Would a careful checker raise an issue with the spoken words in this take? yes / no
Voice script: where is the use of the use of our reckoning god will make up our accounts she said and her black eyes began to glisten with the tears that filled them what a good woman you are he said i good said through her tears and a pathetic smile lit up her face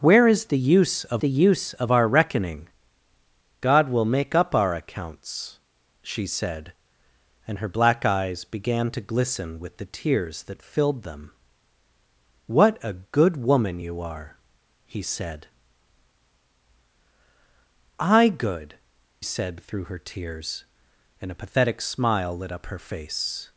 no